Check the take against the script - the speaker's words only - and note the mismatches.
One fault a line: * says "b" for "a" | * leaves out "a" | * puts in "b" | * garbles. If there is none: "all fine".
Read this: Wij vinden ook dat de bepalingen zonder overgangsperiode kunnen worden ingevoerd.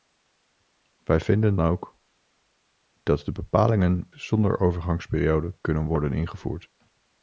all fine